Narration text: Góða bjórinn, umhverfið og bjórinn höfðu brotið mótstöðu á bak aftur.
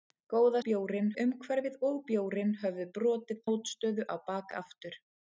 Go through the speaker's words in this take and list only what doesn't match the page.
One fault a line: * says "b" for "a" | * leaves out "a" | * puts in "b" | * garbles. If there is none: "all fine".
all fine